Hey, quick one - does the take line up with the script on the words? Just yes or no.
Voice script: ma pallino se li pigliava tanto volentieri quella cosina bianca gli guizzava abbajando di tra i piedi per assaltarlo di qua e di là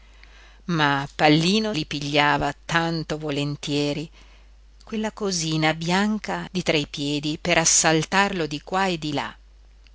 no